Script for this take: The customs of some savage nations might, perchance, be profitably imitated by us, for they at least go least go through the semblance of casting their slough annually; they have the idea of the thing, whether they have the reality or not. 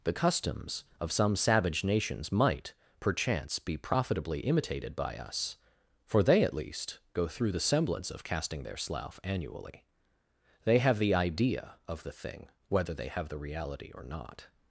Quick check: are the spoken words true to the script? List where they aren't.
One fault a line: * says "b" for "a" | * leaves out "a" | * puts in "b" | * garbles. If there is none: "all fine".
* leaves out "least go"